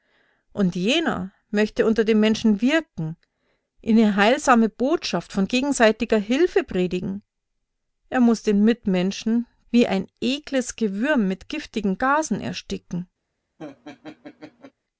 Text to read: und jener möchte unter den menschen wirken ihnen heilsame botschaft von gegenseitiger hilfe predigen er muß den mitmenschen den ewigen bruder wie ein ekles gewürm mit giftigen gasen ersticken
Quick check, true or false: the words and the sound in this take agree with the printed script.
false